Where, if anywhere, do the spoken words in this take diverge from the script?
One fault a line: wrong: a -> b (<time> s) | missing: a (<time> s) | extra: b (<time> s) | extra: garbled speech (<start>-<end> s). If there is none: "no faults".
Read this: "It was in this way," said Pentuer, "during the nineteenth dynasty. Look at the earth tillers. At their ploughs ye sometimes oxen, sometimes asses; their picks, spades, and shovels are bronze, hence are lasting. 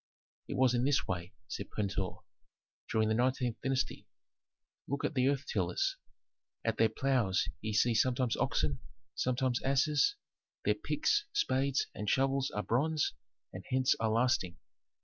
extra: see (7.7 s)
extra: and (13.5 s)